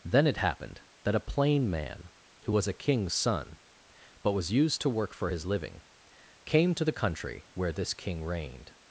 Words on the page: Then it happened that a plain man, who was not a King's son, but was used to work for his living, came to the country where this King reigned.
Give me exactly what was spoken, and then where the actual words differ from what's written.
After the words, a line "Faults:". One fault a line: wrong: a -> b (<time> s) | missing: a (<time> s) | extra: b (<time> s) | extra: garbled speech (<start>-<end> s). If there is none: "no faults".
Then it happened that a plain man, who was a King's son, but was used to work for his living, came to the country where this King reigned.
Faults:
missing: not (2.7 s)